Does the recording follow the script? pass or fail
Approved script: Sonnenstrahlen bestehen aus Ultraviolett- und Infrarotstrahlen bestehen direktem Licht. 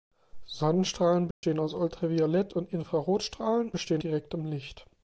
pass